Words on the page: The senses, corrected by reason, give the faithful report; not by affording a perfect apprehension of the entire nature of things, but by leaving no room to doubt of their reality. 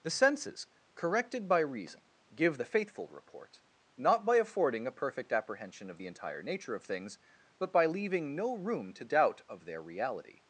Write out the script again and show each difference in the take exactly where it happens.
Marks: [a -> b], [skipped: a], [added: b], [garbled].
The senses, corrected by reason, give the faithful report; not by affording a perfect apprehension of the entire nature of things, but by leaving no room to doubt of their reality.